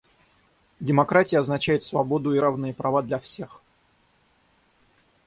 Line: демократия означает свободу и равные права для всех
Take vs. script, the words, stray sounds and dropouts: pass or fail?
pass